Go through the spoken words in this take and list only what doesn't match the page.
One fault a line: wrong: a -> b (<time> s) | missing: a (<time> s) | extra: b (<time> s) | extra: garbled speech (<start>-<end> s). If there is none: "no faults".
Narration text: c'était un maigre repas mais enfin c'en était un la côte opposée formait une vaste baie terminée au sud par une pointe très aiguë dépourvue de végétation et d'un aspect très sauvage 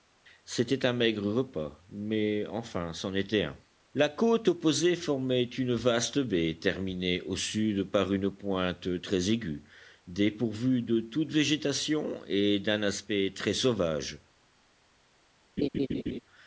extra: toute (11.0 s)